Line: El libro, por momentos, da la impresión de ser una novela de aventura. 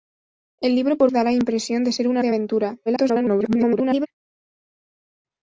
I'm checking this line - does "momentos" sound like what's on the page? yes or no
no